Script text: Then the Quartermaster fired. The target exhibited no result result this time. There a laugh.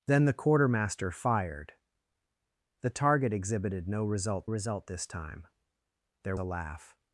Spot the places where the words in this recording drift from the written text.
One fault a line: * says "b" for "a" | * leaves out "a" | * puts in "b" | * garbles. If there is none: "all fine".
all fine